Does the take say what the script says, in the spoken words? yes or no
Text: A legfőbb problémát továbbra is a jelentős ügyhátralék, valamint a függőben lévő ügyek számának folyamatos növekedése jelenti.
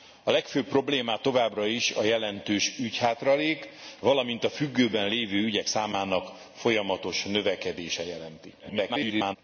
no